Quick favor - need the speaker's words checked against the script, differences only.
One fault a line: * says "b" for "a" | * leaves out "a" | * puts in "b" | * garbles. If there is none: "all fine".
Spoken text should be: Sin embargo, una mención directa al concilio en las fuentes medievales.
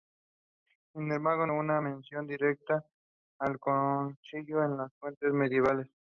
all fine